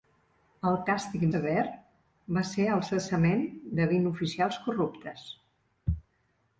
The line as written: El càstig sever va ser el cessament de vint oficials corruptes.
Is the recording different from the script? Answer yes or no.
no